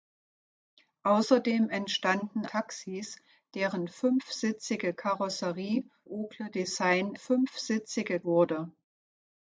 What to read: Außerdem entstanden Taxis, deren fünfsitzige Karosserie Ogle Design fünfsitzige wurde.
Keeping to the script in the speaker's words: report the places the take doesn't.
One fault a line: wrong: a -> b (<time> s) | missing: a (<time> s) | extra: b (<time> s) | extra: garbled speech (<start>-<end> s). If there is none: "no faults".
no faults